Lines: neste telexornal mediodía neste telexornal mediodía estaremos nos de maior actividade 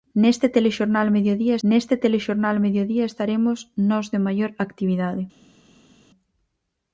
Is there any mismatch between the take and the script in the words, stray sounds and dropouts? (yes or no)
no